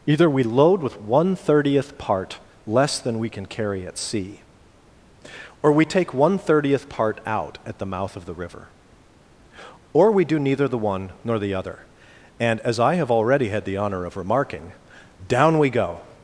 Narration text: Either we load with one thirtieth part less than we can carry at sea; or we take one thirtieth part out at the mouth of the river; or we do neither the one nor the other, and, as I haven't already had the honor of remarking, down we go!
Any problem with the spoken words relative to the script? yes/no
yes